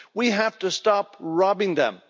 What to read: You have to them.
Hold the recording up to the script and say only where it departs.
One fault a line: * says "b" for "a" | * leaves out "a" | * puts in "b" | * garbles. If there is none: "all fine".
* says "We" for "You"
* puts in "stop robbing"